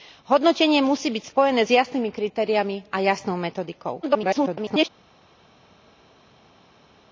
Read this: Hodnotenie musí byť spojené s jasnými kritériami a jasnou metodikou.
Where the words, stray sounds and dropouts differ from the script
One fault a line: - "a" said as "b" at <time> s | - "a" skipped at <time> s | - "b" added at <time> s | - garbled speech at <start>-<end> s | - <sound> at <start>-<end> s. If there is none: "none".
- garbled speech at 4.0-4.9 s